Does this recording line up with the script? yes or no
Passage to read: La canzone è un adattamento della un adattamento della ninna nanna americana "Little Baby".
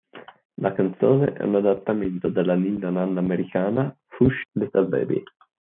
no